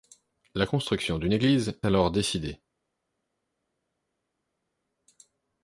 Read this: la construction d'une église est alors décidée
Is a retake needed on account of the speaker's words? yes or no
yes